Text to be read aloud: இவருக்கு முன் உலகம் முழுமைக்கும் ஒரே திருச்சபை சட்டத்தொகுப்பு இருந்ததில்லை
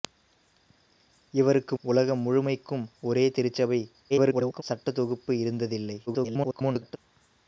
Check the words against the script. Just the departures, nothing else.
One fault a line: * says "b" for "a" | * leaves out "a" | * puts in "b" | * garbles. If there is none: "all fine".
* leaves out "முன்"
* garbles
* garbles